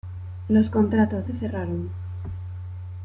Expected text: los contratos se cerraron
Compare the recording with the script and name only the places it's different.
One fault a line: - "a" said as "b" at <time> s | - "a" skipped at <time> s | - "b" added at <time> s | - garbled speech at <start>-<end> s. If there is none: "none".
none